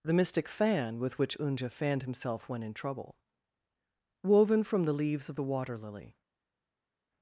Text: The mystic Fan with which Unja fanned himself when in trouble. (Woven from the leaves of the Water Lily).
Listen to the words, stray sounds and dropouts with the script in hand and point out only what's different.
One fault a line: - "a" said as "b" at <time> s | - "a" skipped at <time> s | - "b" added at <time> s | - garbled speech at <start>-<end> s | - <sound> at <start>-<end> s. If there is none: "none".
none